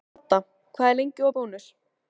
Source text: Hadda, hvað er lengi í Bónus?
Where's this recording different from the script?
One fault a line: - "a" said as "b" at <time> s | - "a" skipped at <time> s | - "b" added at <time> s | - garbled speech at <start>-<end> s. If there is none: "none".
none